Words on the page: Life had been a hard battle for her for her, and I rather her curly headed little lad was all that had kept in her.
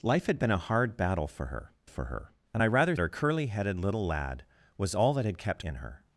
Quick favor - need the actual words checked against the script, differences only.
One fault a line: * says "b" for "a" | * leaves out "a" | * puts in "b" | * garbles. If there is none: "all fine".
all fine